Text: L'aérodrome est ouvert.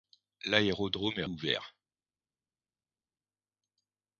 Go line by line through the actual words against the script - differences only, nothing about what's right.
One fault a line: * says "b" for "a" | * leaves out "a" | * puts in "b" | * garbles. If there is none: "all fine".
all fine